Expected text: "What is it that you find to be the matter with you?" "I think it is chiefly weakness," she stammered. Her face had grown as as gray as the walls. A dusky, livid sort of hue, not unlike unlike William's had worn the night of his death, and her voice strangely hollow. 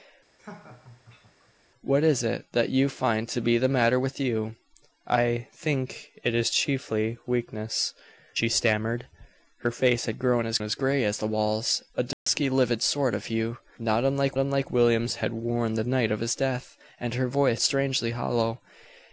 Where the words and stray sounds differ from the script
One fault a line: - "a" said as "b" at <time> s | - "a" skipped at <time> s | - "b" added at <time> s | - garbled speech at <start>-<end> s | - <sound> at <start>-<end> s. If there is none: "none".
- laugh at 0.4-1.5 s
- dropout at 12.1-12.3 s